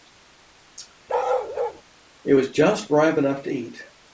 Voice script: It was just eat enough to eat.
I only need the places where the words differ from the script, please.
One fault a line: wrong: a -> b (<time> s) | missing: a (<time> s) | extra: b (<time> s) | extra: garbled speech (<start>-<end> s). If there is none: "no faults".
wrong: eat -> ripe (2.9 s)